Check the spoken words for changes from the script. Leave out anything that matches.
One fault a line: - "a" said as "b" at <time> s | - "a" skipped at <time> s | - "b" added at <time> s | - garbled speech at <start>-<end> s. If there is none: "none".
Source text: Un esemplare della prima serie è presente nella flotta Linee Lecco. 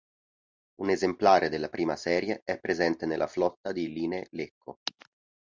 - "di" added at 3.7 s